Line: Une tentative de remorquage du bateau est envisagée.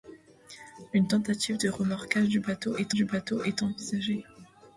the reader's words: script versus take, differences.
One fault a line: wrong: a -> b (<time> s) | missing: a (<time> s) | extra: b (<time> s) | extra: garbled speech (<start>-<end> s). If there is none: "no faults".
extra: du bateau est (2.9 s)